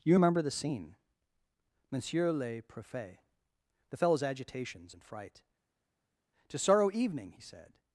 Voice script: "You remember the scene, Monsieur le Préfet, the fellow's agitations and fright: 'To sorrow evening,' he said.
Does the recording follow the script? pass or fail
pass